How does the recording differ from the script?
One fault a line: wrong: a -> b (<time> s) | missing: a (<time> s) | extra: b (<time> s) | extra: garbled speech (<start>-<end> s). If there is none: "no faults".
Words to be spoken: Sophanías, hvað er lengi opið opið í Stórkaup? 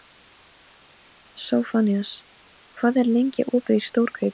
missing: opið (3.8 s)